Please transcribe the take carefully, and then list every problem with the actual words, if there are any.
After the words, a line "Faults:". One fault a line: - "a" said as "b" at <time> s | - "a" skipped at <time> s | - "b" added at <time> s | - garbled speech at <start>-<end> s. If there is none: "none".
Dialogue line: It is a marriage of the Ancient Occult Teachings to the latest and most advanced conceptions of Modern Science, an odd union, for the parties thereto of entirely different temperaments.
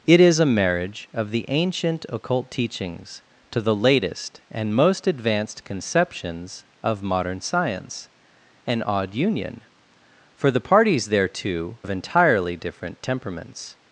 It is a marriage of the Ancient Occult Teachings to the latest and most advanced conceptions of Modern Science, an odd union, for the parties thereto of entirely different temperaments.
Faults:
none